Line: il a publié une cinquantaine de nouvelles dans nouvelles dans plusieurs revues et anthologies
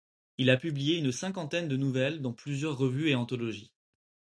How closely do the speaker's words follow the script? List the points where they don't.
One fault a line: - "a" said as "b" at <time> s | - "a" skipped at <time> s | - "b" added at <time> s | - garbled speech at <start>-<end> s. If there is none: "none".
- "nouvelles dans" skipped at 2.3 s